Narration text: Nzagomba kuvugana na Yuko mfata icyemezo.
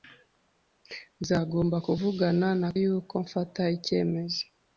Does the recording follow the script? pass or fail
pass